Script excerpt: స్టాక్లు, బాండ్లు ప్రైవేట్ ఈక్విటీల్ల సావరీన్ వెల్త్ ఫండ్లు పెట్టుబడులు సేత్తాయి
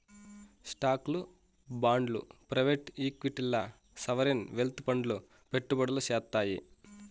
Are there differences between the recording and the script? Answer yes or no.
no